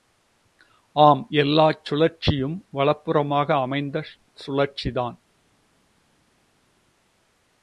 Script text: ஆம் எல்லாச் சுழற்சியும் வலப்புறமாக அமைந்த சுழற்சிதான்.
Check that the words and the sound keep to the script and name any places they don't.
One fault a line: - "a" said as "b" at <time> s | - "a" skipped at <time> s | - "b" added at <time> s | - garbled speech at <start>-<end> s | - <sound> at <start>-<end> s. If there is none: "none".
none